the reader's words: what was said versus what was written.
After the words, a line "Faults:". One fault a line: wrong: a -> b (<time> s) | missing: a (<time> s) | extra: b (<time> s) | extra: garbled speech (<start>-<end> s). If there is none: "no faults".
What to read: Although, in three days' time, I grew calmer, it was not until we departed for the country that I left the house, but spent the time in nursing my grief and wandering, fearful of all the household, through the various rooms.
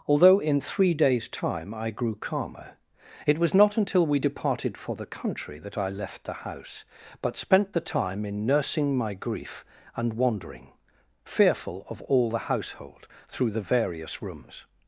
Although, in three days' time, I grew calmer, it was not until we departed for the country that I left the house, but spent the time in nursing my grief and wandering, fearful of all the household, through the various rooms.
Faults:
no faults